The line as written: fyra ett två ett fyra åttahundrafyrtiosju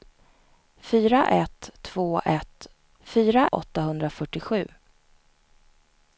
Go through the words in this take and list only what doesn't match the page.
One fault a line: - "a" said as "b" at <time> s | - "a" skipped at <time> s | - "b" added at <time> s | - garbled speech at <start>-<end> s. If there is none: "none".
none